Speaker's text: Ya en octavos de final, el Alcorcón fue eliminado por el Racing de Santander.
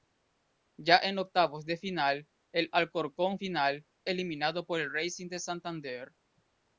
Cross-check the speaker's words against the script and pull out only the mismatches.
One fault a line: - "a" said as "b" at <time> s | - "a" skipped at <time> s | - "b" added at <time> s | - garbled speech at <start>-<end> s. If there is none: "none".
- "fue" said as "final" at 3.3 s